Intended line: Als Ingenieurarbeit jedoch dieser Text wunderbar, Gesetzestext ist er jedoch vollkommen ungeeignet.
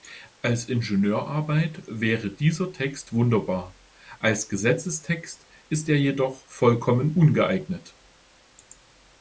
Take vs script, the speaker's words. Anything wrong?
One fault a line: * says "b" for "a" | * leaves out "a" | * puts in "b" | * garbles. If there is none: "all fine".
* says "wäre" for "jedoch"
* puts in "als"